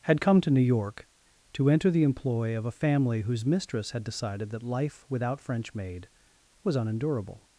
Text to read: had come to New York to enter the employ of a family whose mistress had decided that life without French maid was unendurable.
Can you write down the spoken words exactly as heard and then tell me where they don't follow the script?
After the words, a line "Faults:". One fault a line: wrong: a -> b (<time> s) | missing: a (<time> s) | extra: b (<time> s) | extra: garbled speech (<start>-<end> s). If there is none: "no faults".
had come to New York to enter the employ of a family whose mistress had decided that life without French maid was unendurable.
Faults:
no faults